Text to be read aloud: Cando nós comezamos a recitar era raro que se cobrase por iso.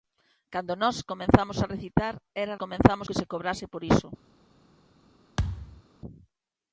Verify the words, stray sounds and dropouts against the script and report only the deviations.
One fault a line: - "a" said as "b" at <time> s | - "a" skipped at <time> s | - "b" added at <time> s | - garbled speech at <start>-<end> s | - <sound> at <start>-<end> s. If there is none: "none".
- "raro" said as "comezamos" at 2.6 s
- thud at 5.4-5.8 s